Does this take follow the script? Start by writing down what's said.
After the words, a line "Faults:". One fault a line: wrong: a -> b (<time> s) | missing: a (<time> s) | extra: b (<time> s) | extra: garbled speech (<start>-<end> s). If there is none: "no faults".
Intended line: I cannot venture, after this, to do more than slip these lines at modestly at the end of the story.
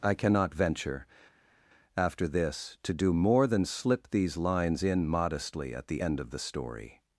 I cannot venture, after this, to do more than slip these lines in modestly at the end of the story.
Faults:
wrong: at -> in (4.8 s)